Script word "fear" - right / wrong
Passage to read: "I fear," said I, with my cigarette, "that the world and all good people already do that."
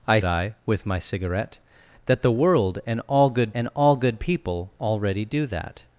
wrong